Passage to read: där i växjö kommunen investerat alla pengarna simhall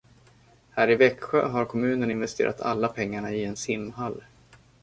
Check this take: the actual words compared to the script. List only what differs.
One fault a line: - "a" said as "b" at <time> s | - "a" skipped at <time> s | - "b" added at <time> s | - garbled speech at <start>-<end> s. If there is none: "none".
- "där" said as "här" at 0.7 s
- "har" added at 1.5 s
- "i en" added at 3.3 s